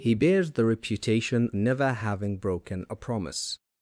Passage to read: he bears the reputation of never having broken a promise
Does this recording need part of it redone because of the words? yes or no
yes